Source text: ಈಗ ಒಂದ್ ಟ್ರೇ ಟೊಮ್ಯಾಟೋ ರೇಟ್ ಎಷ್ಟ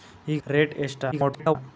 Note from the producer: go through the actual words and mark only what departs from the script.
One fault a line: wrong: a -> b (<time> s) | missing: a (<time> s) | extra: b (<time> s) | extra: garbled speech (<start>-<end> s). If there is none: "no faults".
missing: ಒಂದ್ ಟ್ರೇ ಟೊಮ್ಯಾಟೋ (0.4 s)
extra: garbled speech (1.1-1.6 s)